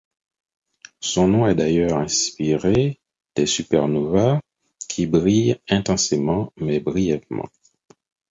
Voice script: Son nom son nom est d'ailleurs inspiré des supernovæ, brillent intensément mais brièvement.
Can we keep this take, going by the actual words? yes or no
no